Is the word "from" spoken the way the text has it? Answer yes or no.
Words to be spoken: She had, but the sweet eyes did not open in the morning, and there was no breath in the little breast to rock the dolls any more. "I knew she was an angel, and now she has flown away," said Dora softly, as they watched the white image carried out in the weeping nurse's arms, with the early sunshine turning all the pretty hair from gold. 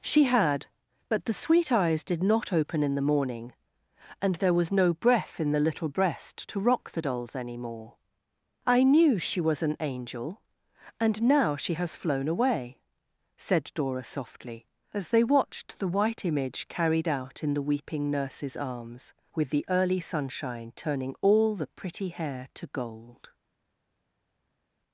no